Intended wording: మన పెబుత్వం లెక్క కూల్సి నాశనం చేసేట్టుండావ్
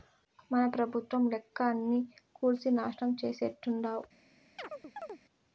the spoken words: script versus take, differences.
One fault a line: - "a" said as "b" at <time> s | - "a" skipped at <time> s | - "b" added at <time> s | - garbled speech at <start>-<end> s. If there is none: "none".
- "అన్నీ" added at 1.7 s